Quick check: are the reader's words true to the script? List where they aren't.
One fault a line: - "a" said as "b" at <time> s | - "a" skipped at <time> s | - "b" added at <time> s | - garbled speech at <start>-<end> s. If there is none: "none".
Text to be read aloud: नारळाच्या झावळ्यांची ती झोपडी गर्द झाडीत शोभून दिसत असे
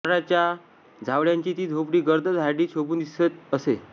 none